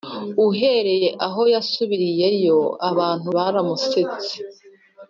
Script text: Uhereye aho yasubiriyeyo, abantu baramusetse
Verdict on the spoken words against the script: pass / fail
pass